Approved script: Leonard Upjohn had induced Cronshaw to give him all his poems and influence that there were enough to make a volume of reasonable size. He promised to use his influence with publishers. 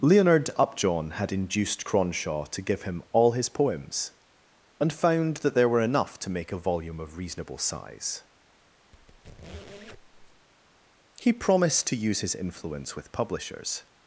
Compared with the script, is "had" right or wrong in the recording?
right